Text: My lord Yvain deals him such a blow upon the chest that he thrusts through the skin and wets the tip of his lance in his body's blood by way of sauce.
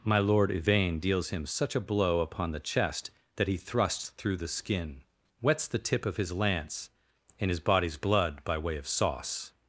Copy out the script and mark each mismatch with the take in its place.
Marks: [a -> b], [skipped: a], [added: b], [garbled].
My lord Yvain deals him such a blow upon the chest that he thrusts through the skin [skipped: and] wets the tip of his lance in his body's blood by way of sauce.